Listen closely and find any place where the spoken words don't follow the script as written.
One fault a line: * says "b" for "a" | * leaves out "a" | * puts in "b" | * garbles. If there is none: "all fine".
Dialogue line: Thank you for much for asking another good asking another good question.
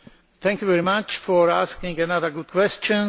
* says "very" for "for"
* leaves out "asking another good"